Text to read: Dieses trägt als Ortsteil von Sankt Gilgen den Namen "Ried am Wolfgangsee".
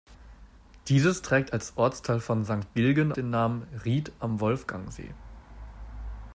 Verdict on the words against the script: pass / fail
pass